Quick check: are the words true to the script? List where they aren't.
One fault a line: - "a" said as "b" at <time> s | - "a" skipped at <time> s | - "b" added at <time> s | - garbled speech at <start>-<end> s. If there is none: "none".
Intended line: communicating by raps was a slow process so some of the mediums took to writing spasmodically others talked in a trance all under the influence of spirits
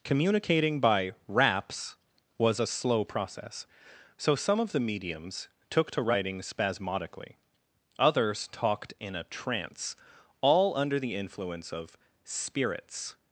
none